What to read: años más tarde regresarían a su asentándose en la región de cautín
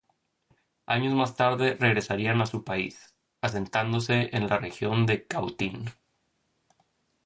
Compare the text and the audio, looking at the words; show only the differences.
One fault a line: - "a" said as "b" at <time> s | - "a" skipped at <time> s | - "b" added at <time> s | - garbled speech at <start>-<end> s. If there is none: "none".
- "país" added at 2.6 s